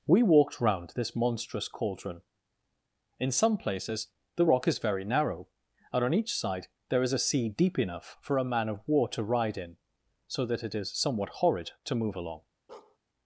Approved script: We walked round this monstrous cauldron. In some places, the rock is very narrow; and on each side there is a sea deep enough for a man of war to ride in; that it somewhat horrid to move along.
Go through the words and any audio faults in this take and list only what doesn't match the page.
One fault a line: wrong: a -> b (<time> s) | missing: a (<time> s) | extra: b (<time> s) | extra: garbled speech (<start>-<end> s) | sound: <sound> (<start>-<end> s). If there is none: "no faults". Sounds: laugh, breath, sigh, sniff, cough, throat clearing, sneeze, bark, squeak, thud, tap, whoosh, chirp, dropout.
extra: so (10.3 s)
extra: is (10.7 s)
sound: bark (12.7-13.0 s)